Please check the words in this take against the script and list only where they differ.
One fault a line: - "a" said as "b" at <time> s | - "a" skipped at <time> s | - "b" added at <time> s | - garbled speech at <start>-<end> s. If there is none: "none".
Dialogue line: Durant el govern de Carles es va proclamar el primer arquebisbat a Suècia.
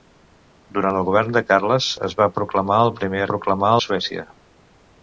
- "arquebisbat" said as "proclamar" at 3.3 s